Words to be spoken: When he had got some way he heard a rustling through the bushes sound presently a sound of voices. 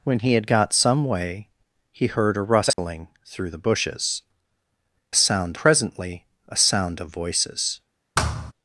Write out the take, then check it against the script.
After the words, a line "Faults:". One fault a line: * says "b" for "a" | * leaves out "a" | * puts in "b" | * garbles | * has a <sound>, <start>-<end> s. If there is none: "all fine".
When he had got some way he heard a rustling through the bushes sound presently a sound of voices.
Faults:
* has a dropout, 2.7-2.8 s
* has a thud, 8.2-8.5 s